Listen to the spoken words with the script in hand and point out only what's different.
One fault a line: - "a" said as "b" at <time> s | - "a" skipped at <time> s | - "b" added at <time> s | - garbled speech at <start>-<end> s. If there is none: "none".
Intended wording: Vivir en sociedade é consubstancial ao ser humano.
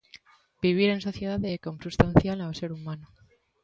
none